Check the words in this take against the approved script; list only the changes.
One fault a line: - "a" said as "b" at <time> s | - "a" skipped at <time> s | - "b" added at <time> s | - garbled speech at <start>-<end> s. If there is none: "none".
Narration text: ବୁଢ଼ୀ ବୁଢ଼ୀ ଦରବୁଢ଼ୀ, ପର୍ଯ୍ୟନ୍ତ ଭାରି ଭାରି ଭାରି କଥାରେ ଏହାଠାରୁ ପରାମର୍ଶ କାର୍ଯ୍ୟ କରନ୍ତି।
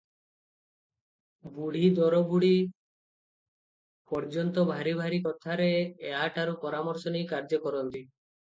- "ବୁଢ଼ୀ" skipped at 1.9 s
- "ଭାରି" skipped at 5.2 s
- "ନେଇ" added at 7.2 s